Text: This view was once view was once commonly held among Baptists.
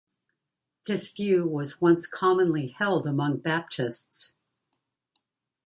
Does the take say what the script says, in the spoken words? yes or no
no